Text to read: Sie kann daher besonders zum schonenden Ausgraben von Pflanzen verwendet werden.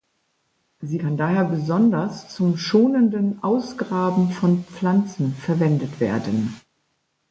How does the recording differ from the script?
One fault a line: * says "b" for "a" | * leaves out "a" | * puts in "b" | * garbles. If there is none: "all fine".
all fine